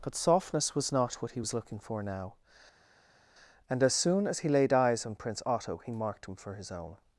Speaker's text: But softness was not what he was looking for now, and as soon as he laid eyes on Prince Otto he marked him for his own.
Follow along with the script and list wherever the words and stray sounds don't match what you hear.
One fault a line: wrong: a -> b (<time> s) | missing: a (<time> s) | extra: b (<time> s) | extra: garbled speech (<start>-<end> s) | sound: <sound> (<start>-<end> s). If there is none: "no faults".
no faults